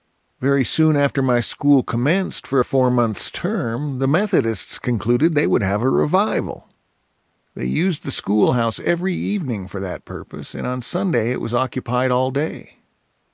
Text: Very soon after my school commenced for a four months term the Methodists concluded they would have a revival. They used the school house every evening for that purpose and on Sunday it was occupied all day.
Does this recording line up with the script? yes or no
yes